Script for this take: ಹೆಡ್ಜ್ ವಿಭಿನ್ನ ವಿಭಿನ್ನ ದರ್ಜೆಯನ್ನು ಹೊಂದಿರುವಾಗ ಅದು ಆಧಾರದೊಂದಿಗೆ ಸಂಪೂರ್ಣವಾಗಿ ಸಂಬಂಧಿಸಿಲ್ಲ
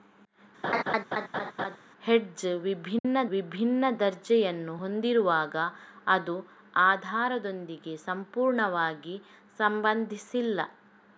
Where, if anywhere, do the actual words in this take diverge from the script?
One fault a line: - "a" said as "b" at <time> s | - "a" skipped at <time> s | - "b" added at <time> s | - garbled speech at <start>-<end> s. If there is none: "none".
none